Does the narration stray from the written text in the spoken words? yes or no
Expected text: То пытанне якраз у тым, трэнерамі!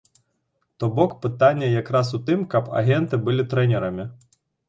yes